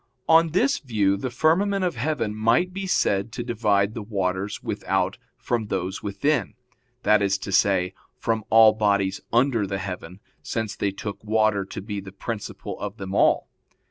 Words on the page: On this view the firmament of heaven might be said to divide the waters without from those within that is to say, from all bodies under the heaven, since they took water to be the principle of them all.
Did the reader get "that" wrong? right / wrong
right